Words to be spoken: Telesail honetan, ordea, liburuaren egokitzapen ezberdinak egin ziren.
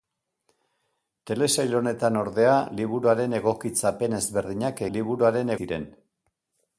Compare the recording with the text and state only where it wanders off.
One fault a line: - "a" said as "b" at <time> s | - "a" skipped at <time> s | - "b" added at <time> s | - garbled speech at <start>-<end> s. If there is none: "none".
- "egin" said as "liburuaren" at 5.0 s